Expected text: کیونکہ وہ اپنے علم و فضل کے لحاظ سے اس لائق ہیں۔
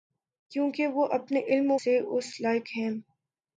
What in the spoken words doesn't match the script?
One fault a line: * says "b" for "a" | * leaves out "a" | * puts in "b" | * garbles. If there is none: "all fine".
* leaves out "فضل کے لحاظ"